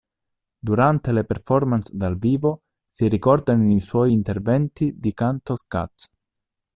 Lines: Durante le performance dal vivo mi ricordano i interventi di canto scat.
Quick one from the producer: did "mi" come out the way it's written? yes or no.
no